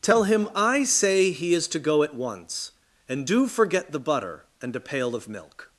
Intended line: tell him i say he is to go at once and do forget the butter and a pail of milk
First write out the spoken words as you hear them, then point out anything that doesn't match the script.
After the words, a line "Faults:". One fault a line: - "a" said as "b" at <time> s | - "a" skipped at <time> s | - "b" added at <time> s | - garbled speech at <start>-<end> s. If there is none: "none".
tell him i say he is to go at once and do forget the butter and a pail of milk
Faults:
none